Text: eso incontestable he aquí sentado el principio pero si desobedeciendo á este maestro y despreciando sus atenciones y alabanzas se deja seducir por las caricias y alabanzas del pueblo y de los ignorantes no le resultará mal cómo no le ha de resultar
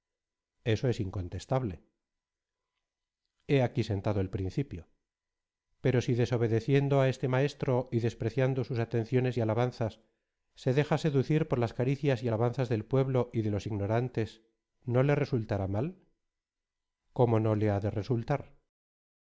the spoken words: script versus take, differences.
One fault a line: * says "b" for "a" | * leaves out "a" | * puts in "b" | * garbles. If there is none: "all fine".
* puts in "es"